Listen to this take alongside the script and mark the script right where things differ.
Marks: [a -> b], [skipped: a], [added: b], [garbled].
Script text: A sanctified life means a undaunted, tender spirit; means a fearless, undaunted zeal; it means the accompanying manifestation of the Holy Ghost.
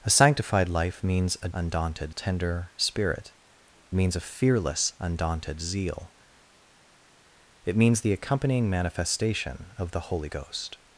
A sanctified life means a undaunted, tender spirit; means a fearless, undaunted zeal; it means the accompanying manifestation of the Holy Ghost.